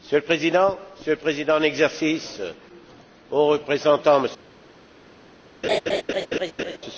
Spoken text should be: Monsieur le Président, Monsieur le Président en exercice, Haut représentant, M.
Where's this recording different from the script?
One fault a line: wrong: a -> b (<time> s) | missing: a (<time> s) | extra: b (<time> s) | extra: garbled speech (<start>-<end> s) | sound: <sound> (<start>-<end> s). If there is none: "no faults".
sound: laugh (5.6-6.8 s)